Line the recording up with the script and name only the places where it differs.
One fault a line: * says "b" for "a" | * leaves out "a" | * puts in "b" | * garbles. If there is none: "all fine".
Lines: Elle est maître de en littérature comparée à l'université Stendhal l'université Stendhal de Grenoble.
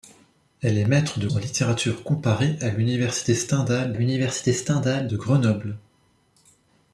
all fine